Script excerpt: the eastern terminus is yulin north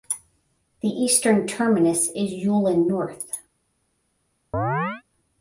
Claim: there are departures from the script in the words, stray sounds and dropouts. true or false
true